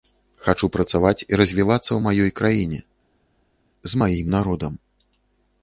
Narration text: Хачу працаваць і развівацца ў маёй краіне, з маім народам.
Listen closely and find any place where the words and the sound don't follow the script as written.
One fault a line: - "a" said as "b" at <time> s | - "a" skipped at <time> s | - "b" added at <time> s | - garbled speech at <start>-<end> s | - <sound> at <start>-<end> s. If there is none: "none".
none